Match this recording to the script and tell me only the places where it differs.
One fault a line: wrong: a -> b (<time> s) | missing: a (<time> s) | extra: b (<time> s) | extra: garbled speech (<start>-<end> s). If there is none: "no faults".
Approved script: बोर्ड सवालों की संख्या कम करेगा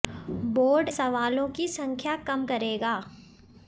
no faults